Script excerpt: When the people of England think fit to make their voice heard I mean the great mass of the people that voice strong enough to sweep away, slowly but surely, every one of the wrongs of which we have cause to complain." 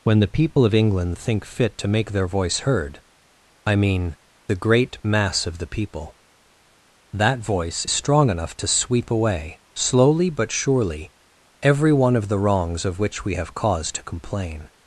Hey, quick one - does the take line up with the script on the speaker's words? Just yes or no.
yes